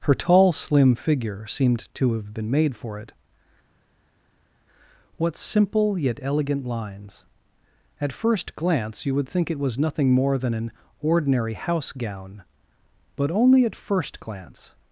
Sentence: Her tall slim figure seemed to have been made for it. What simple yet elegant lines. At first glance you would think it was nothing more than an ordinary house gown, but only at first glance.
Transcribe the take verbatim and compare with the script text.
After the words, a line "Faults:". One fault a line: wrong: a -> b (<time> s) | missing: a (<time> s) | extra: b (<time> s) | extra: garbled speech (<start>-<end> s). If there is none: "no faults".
Her tall slim figure seemed to have been made for it. What simple yet elegant lines. At first glance you would think it was nothing more than an ordinary house gown, but only at first glance.
Faults:
no faults